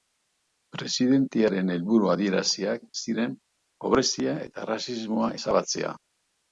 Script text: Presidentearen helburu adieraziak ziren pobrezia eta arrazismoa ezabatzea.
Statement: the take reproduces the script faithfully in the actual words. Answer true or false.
true